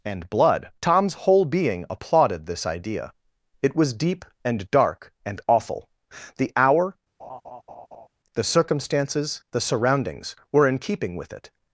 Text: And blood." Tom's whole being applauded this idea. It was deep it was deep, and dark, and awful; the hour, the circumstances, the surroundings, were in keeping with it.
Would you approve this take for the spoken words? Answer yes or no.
no